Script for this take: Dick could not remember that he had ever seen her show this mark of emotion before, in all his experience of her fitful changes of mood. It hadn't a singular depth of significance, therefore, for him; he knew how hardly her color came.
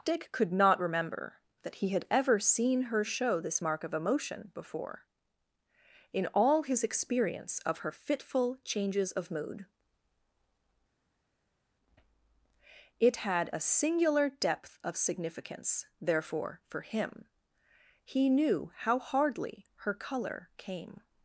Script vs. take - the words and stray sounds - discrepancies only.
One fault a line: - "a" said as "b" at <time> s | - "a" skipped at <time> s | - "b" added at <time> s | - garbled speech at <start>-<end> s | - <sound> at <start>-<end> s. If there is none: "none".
- "hadn't" said as "had" at 13.2 s